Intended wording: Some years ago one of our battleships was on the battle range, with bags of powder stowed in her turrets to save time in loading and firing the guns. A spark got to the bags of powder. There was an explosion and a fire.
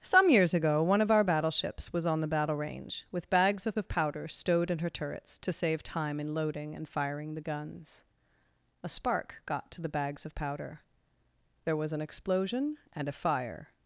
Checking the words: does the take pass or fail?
fail